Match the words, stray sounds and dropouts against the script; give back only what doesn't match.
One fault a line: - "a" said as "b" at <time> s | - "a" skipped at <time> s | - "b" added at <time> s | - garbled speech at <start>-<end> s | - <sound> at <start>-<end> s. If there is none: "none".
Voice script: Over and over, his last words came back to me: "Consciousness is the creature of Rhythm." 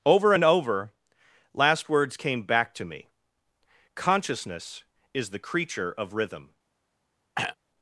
- "his" skipped at 0.9 s
- throat clearing at 7.4-7.6 s